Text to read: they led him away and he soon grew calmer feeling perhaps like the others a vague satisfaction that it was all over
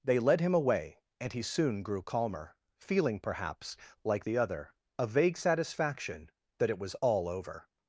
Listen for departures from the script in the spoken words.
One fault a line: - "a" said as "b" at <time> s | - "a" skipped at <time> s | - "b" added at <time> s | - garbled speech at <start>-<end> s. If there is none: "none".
- "others" said as "other" at 4.4 s